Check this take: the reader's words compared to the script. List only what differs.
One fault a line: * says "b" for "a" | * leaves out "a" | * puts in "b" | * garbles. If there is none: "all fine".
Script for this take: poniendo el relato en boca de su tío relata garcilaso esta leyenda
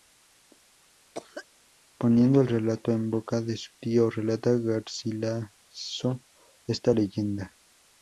all fine